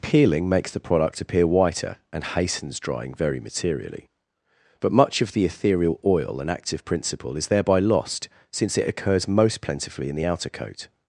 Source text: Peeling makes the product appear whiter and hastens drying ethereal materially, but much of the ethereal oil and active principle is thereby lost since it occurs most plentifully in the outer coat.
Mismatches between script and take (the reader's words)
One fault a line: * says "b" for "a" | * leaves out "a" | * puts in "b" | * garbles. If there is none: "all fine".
* says "very" for "ethereal"